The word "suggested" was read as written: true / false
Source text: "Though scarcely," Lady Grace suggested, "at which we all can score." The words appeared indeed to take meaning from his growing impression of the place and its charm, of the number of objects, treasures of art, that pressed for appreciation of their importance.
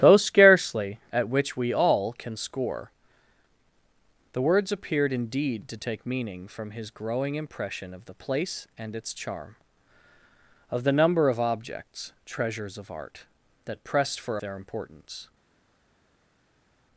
false